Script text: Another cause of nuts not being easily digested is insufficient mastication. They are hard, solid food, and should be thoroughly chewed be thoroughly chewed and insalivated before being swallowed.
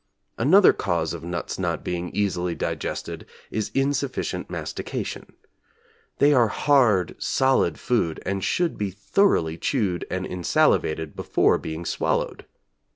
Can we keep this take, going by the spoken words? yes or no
no